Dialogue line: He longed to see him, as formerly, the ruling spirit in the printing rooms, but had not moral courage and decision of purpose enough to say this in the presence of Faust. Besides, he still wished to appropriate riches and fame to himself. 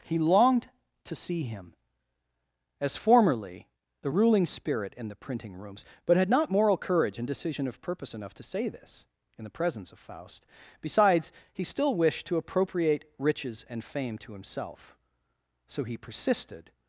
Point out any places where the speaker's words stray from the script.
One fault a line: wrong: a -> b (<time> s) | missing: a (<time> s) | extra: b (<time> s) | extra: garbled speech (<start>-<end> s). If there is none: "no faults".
extra: So he persisted (15.7 s)